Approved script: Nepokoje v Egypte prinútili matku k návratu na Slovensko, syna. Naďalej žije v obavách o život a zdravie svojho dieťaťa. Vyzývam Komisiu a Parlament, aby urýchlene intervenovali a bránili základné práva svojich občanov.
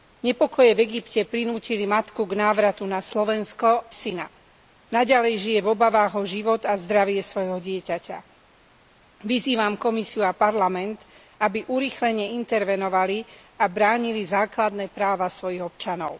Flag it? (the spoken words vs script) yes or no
no